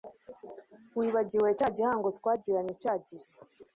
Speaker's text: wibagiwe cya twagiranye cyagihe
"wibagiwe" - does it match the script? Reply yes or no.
yes